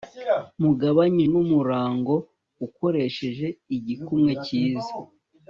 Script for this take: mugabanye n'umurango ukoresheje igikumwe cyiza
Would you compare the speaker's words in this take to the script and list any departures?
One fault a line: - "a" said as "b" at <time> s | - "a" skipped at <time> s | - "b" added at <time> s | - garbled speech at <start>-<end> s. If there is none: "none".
none